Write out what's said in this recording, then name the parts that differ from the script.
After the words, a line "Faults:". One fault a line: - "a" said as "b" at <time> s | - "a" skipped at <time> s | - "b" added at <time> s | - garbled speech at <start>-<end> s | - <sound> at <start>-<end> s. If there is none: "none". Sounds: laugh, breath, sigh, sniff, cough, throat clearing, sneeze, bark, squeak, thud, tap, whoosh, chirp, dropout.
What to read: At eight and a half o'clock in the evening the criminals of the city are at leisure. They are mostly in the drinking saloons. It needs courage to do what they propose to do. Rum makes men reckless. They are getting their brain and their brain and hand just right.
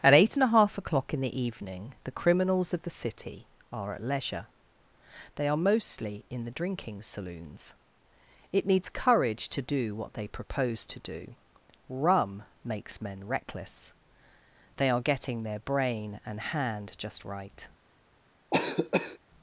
At eight and a half o'clock in the evening the criminals of the city are at leisure. They are mostly in the drinking saloons. It needs courage to do what they propose to do. Rum makes men reckless. They are getting their brain and hand just right.
Faults:
- "their brain and" skipped at 16.4 s
- cough at 18.5-19.2 s